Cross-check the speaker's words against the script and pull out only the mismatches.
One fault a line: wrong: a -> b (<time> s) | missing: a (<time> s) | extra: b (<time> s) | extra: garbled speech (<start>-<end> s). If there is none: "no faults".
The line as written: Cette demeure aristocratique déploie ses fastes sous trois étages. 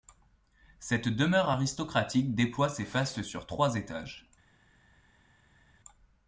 wrong: sous -> sur (3.2 s)